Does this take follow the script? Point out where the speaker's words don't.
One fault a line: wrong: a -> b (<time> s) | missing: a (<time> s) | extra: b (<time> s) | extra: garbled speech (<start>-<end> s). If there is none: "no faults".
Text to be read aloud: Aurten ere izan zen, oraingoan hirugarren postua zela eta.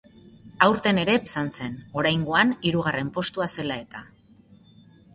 no faults